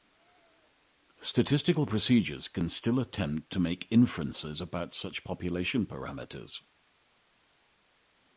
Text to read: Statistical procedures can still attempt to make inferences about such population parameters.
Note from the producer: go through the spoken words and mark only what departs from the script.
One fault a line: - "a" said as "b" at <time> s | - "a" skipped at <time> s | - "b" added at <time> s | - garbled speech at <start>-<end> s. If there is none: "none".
none